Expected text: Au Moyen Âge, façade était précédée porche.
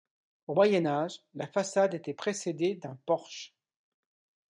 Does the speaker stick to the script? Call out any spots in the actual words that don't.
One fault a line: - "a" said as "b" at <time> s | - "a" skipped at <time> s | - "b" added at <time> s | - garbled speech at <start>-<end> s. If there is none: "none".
- "la" added at 1.3 s
- "d'un" added at 2.7 s